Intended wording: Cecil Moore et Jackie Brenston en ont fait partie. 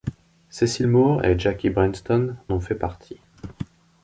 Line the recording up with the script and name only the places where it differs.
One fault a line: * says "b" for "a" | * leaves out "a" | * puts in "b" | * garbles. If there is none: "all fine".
* leaves out "en"